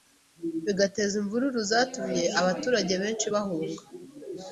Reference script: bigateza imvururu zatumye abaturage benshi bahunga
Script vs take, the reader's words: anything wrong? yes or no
no